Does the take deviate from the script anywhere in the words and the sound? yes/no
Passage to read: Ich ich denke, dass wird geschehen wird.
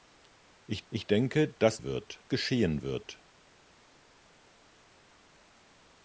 no